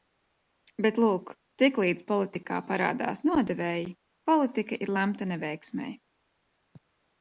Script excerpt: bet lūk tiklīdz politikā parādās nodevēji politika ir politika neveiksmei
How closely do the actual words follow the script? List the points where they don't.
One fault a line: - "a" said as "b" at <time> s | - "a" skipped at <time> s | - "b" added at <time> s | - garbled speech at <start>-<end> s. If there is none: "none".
- "politika" said as "lemta" at 5.0 s